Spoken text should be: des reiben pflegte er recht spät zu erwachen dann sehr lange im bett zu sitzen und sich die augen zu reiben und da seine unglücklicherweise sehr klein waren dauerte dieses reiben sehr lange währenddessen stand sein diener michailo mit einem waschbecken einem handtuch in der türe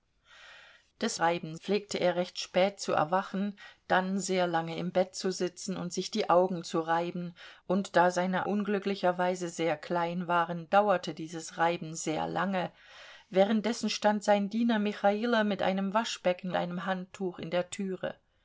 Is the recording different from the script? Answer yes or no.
no